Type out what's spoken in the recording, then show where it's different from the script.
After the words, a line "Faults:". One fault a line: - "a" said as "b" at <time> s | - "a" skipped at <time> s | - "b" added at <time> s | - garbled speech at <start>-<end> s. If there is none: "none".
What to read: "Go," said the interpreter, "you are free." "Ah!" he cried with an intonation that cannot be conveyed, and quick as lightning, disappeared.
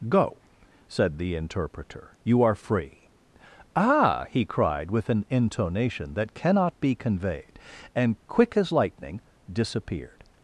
"Go," said the interpreter, "you are free." "Ah!" he cried with an intonation that cannot be conveyed, and quick as lightning, disappeared.
Faults:
none